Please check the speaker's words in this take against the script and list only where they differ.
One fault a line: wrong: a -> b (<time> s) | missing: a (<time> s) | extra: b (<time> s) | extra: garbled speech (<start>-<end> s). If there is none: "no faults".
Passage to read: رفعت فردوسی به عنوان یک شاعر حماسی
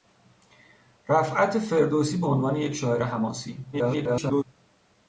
extra: garbled speech (3.7-4.4 s)